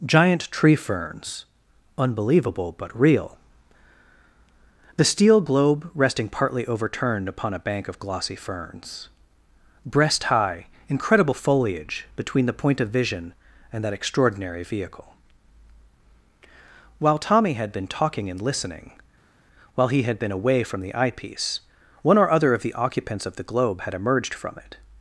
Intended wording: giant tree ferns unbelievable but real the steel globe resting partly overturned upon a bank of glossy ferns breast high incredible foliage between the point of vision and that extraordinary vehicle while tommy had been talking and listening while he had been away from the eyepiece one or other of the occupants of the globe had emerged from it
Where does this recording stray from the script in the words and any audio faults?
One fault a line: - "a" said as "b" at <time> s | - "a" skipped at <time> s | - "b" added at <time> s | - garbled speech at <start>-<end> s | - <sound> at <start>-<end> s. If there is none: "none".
none